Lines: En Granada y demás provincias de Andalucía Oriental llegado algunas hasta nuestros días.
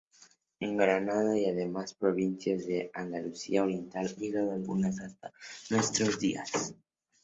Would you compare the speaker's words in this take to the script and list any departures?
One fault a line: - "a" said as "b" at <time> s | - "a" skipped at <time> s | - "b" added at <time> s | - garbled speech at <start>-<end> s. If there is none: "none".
none